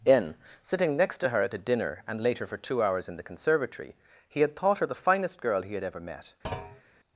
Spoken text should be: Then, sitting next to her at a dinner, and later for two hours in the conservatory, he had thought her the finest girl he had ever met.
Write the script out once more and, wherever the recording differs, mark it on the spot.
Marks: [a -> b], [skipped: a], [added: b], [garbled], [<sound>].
[Then, -> In] sitting next to her at a dinner, and later for two hours in the conservatory, he had thought her the finest girl he had ever met. [thud]